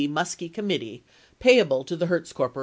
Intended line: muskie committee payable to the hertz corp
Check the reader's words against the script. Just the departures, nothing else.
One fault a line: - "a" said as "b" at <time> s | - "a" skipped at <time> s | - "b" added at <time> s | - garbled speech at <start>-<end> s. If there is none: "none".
none